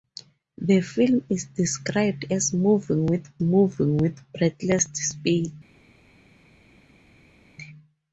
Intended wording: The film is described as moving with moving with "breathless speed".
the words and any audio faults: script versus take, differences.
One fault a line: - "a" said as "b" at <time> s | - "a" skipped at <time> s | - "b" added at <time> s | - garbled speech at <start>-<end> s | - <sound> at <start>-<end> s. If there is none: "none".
none